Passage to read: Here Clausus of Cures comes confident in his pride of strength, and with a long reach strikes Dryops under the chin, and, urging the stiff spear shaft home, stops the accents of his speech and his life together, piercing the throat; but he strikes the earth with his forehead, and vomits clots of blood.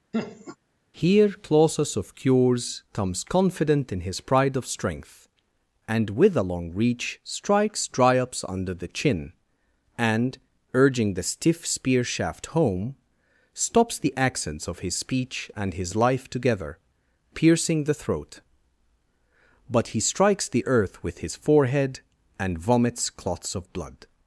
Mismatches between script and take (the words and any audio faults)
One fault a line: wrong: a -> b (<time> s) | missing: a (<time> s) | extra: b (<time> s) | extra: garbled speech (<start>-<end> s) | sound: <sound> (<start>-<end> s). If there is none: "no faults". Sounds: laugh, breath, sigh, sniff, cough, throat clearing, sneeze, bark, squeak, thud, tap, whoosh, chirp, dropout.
sound: laugh (0.1-0.6 s)